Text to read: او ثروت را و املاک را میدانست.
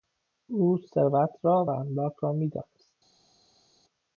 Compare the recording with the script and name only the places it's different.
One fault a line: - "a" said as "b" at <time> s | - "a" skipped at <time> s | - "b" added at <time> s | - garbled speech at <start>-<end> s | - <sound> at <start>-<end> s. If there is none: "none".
none